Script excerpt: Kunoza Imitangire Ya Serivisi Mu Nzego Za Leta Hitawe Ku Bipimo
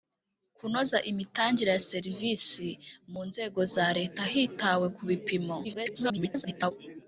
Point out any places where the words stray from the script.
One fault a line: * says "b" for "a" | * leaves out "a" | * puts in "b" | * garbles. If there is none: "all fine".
* garbles